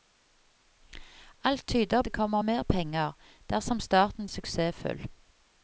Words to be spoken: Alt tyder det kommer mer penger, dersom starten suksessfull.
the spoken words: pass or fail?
pass